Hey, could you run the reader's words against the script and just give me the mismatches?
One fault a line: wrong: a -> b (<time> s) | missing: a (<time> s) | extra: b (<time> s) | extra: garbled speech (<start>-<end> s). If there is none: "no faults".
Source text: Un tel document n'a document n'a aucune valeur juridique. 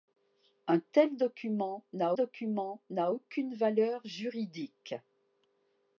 no faults